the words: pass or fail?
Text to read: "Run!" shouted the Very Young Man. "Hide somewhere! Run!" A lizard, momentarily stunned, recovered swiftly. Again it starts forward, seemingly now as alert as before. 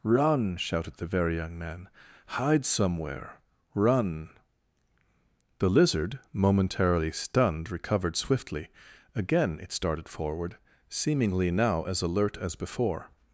fail